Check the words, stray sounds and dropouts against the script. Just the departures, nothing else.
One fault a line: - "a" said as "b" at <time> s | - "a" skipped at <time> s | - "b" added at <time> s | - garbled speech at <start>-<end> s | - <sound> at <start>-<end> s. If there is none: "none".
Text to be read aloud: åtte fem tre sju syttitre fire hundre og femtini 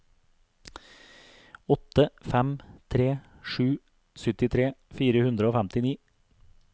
none